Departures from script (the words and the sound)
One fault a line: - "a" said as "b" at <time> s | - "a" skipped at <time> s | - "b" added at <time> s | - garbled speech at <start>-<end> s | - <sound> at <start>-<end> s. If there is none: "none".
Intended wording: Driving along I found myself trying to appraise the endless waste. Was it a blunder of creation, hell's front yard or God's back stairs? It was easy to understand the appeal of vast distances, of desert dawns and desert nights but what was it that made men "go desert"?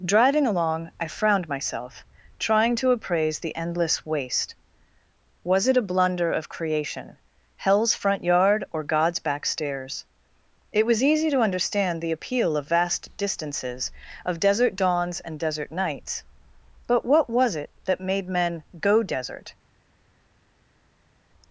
- "found" said as "frowned" at 1.1 s